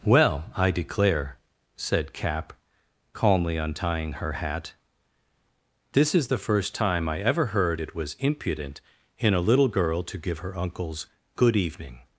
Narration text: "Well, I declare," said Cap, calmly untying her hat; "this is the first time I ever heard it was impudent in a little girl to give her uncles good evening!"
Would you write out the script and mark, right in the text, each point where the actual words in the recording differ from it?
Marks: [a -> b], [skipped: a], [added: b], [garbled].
"Well, I declare," said Cap, calmly untying her hat; "this is the first time I ever heard it was impudent in a little girl to give her uncles good evening!"